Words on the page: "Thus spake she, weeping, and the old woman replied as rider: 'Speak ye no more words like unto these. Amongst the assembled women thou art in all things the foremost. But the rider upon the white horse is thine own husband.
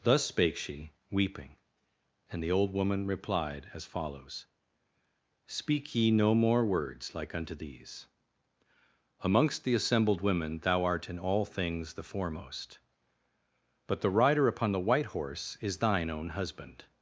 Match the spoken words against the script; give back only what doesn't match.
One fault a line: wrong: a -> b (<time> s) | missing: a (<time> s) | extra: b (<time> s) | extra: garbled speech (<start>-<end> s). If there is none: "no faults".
wrong: rider -> follows (3.9 s)